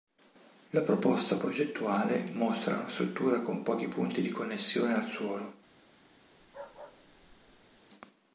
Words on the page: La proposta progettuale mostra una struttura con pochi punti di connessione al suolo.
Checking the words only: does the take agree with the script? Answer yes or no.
yes